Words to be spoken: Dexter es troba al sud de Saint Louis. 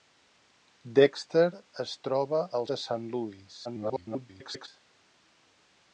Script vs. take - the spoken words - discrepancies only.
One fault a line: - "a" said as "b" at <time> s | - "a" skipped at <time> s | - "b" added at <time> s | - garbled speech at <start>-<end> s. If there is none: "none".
- "sud" skipped at 2.7 s
- garbled speech at 3.6-4.7 s